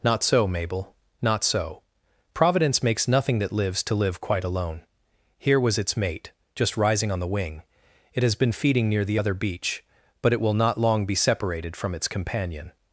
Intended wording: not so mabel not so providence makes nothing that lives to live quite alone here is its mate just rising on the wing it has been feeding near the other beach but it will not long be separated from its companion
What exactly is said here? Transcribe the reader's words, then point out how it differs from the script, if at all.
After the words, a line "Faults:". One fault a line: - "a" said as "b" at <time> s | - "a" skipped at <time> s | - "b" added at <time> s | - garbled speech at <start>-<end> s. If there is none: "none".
not so mabel not so providence makes nothing that lives to live quite alone here was its mate just rising on the wing it has been feeding near the other beach but it will not long be separated from its companion
Faults:
- "is" said as "was" at 5.6 s